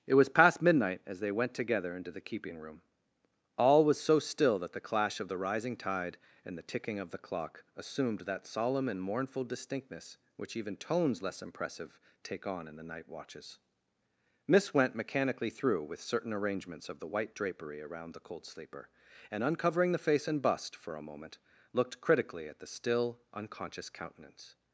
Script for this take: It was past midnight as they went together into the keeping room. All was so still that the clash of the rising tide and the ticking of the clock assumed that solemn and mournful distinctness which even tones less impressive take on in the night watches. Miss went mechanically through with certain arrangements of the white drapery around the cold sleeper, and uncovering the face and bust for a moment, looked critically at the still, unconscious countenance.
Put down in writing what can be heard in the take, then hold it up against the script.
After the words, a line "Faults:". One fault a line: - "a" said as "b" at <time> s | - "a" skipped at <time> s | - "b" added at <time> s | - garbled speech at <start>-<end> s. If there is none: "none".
It was past midnight as they went together into the keeping room. All was so still that the clash of the rising tide and the ticking of the clock assumed that solemn and mournful distinctness which even tones less impressive take on in the night watches. Miss went mechanically through with certain arrangements of the white drapery around the cold sleeper, and uncovering the face and bust for a moment, looked critically at the still, unconscious countenance.
Faults:
none